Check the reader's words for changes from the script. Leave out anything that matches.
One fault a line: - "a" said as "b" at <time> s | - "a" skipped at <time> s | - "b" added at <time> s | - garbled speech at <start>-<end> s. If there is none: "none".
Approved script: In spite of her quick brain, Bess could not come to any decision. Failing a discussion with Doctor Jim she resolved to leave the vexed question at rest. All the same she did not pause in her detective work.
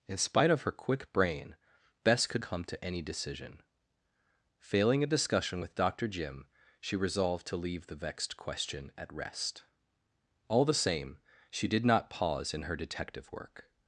- "not" skipped at 2.4 s